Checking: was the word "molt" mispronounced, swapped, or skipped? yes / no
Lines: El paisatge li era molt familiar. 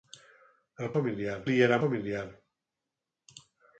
yes